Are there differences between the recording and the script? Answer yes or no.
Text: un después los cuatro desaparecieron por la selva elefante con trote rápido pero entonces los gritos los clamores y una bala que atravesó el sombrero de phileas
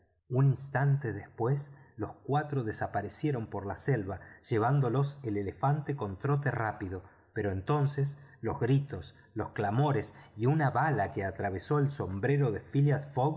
yes